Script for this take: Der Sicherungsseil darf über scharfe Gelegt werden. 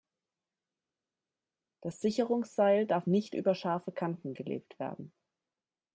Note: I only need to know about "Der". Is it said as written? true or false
false